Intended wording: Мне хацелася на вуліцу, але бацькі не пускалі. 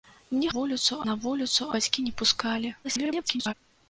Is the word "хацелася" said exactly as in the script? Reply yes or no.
no